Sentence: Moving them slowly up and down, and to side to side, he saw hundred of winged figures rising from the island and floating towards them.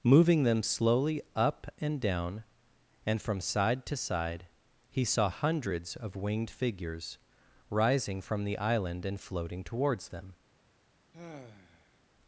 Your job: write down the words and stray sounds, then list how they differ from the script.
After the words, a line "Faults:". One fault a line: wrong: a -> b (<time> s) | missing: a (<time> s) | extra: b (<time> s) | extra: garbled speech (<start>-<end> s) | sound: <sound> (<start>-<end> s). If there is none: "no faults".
Moving them slowly up and down, and from side to side, he saw hundreds of winged figures rising from the island and floating towards them.
Faults:
wrong: to -> from (3.2 s)
wrong: hundred -> hundreds (5.3 s)
sound: sigh (11.1-12.0 s)